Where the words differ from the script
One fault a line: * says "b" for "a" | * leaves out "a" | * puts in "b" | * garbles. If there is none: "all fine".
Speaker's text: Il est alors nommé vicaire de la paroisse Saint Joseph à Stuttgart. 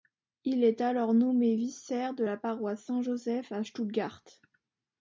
all fine